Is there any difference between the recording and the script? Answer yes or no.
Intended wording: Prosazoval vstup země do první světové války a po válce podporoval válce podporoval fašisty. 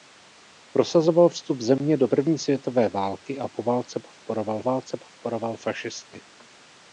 no